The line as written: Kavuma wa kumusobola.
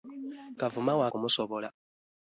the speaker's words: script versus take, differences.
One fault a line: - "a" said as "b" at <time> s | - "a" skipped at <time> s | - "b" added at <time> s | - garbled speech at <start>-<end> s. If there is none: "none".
none